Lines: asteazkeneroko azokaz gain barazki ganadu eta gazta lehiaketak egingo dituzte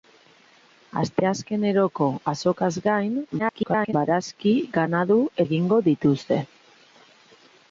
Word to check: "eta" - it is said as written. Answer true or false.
false